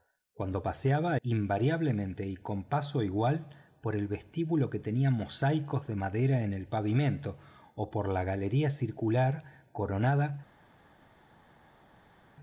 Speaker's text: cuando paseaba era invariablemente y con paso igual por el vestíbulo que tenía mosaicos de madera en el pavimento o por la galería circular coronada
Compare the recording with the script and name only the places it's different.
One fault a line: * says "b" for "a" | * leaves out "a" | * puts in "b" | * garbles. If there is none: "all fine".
* leaves out "era"